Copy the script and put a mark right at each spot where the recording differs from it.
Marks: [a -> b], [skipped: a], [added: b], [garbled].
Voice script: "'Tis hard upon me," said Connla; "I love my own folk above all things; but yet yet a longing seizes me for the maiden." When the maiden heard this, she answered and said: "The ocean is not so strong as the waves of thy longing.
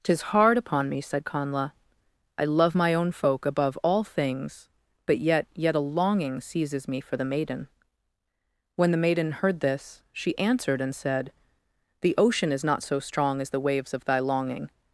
"'Tis hard upon me," said Connla; "I love my own folk above all things; but yet yet a longing seizes me for the maiden." When the maiden heard this, she answered and said: "The ocean is not so strong as the waves of thy longing.